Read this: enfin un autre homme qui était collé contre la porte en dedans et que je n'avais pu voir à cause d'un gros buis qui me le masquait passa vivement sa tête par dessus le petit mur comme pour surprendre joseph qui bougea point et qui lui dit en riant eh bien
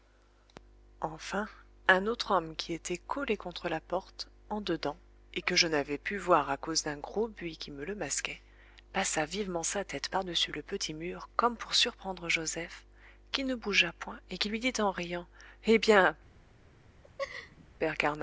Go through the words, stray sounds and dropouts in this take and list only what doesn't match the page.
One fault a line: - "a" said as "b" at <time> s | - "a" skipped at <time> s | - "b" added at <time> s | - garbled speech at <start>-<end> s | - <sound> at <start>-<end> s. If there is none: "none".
- "ne" added at 13.4 s
- laugh at 17.0-17.7 s